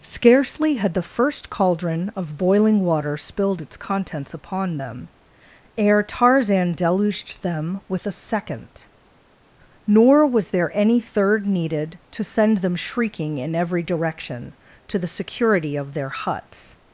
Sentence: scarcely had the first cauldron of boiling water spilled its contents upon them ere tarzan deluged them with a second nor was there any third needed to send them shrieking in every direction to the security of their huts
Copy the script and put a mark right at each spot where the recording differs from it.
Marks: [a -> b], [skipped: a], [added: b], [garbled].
scarcely had the first cauldron of boiling water spilled its contents upon them ere tarzan deluged them with a second nor was there any third needed to send them shrieking in every direction to the security of their huts